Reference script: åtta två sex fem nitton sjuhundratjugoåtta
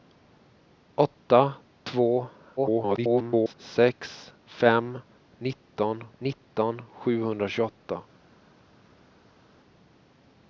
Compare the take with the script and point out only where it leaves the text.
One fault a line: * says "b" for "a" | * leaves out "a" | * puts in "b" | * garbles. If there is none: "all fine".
* garbles
* puts in "nitton"